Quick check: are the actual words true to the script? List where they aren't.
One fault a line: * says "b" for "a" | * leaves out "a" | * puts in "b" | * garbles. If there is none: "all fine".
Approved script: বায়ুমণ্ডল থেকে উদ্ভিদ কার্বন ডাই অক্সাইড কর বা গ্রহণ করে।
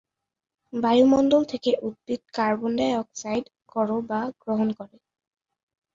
all fine